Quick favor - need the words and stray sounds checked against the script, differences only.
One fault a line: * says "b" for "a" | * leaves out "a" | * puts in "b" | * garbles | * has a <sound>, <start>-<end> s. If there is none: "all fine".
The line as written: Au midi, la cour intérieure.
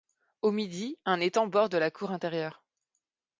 * puts in "un étang borde"